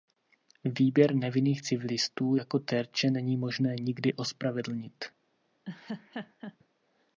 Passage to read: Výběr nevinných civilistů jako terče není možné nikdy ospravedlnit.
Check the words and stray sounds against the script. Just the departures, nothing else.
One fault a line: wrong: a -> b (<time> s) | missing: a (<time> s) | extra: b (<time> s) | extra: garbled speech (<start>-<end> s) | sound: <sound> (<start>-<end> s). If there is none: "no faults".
sound: laugh (5.6-6.6 s)